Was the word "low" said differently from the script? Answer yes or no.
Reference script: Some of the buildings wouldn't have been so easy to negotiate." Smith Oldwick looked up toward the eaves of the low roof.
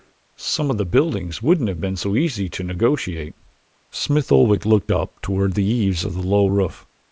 no